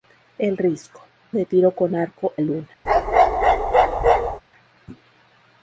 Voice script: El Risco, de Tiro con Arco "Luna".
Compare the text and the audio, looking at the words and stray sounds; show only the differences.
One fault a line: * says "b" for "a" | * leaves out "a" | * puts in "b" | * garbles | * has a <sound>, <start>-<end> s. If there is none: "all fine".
* has a bark, 2.9-4.4 s